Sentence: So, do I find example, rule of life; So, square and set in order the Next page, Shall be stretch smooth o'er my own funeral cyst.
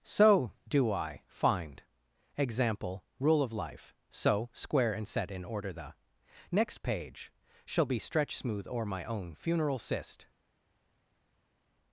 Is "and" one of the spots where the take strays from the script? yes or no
no